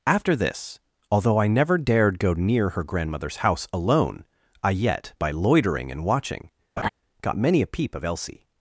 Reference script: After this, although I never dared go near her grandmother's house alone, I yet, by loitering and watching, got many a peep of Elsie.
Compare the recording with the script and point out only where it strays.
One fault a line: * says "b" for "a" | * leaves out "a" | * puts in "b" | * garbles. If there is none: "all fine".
all fine